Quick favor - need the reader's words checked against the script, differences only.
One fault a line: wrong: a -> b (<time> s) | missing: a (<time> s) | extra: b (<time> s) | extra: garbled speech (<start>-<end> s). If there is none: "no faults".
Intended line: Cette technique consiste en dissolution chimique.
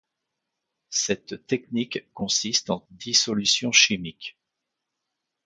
no faults